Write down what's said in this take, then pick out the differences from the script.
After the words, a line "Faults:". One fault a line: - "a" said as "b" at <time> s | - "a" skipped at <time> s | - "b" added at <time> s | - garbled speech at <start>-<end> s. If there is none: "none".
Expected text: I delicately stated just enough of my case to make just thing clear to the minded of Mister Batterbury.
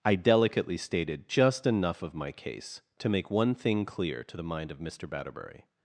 I delicately stated just enough of my case to make one thing clear to the mind of Mister Batterbury.
Faults:
- "just" said as "one" at 3.3 s
- "minded" said as "mind" at 4.4 s